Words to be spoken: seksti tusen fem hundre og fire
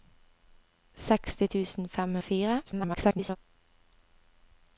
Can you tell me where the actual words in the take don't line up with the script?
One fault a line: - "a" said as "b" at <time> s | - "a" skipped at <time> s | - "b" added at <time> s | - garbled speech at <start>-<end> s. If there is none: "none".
- "hundre" skipped at 2.2 s
- garbled speech at 2.7-3.4 s